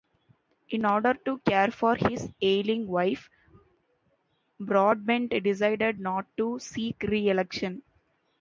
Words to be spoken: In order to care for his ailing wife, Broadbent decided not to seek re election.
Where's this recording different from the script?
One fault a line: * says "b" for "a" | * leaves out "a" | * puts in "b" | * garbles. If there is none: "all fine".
all fine